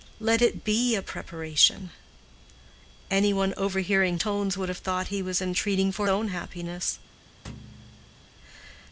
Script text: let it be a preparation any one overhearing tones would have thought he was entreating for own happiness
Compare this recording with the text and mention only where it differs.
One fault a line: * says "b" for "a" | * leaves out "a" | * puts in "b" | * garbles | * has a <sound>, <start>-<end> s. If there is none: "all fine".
* has a thud, 7.4-8.3 s